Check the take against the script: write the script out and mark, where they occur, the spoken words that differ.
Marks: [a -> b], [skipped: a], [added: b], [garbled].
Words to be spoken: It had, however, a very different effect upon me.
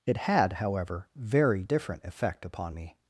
It had, however, [skipped: a] very different effect upon me.